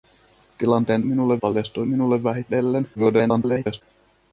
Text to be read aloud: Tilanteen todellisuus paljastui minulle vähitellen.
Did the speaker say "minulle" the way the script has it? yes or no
yes